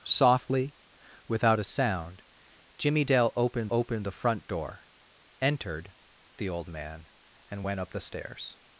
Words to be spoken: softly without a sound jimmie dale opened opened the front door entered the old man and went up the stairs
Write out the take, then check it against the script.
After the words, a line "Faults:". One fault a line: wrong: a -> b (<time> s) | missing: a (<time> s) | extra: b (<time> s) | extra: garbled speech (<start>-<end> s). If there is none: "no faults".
softly without a sound jimmie dale opened opened the front door entered the old man and went up the stairs
Faults:
no faults